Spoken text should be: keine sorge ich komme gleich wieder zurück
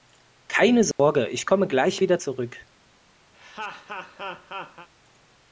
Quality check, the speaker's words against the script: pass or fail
pass